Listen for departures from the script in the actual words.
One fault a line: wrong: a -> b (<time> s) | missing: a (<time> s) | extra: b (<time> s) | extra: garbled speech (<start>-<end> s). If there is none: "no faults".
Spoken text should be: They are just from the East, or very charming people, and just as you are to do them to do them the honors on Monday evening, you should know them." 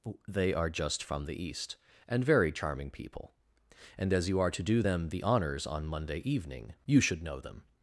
wrong: or -> and (2.1 s)
missing: just (4.1 s)
missing: to do them (5.1 s)